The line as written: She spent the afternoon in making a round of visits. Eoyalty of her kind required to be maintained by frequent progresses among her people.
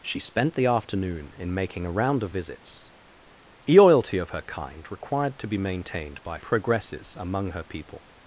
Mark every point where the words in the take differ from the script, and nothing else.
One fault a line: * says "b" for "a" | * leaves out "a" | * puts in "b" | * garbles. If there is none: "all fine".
* leaves out "frequent"